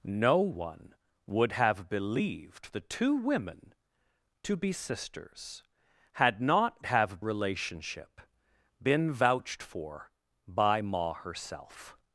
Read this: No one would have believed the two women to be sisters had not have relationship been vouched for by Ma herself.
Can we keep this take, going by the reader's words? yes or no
yes